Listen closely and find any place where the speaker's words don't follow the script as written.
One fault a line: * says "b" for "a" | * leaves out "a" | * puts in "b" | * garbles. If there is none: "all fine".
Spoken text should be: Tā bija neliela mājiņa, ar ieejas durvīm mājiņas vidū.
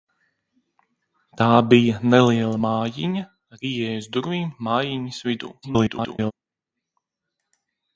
* garbles